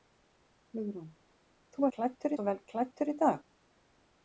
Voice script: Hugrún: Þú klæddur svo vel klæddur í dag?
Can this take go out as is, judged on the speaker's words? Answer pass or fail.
pass